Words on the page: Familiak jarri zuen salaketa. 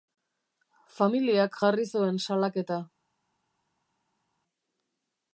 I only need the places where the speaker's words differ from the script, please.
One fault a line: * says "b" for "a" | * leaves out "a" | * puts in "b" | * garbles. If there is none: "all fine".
all fine